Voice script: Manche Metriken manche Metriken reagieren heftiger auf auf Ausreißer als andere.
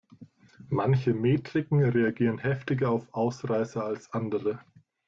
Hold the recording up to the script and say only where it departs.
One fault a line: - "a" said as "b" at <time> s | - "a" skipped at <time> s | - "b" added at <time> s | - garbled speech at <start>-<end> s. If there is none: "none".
- "manche Metriken" skipped at 1.8 s
- "auf" skipped at 3.1 s